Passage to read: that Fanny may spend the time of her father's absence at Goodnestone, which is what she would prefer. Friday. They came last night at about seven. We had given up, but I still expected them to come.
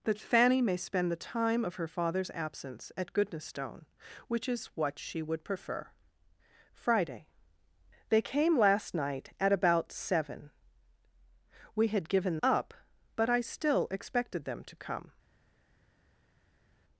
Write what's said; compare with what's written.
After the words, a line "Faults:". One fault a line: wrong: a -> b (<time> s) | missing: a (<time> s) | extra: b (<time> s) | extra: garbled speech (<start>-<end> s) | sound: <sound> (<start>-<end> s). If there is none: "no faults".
that Fanny may spend the time of her father's absence at Goodnestone, which is what she would prefer. Friday. They came last night at about seven. We had given up, but I still expected them to come.
Faults:
no faults